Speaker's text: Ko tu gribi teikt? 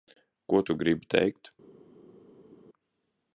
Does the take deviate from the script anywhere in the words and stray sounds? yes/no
no